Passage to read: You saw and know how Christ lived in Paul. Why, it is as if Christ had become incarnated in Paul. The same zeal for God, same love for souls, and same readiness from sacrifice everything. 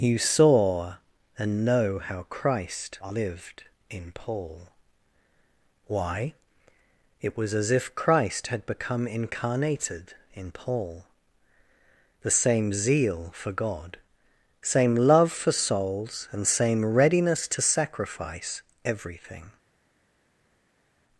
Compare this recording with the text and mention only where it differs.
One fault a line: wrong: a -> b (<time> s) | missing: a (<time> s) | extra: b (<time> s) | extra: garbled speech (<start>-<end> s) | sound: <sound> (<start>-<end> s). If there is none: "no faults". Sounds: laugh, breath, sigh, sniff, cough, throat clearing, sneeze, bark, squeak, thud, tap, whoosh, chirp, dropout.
wrong: is -> was (7.4 s)
wrong: from -> to (17.5 s)